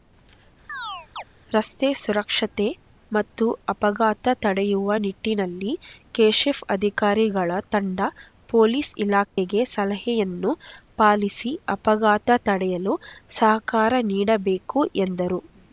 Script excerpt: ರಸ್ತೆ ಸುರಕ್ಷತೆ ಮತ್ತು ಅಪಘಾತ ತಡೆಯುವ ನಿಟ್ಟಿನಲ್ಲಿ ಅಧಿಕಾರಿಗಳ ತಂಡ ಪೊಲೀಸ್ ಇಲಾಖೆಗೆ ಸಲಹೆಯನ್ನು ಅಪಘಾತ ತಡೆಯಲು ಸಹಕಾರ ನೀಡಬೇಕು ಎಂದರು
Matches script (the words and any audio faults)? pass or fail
fail